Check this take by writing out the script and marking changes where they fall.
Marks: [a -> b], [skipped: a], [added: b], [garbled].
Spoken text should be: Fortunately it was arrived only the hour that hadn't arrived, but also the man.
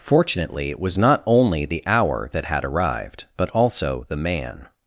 Fortunately it was [arrived -> not] only the hour that [hadn't -> had] arrived, but also the man.